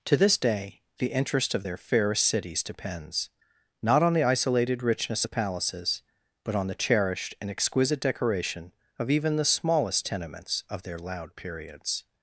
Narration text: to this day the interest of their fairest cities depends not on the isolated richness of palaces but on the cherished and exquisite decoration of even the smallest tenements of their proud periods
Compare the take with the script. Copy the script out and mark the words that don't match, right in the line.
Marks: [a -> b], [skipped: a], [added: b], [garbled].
to this day the interest of their fairest cities depends not on the isolated richness of palaces but on the cherished and exquisite decoration of even the smallest tenements of their [proud -> loud] periods